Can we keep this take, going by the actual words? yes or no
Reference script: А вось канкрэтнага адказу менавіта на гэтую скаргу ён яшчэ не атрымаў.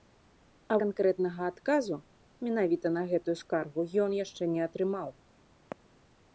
no